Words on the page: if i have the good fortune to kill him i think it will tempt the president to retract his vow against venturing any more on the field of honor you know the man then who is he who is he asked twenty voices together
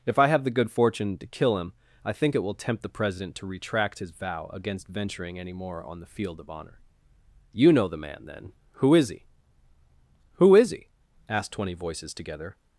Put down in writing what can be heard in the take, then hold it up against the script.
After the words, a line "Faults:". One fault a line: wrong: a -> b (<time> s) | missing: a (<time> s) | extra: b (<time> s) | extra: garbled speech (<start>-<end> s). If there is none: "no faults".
if i have the good fortune to kill him i think it will tempt the president to retract his vow against venturing any more on the field of honor you know the man then who is he who is he asked twenty voices together
Faults:
no faults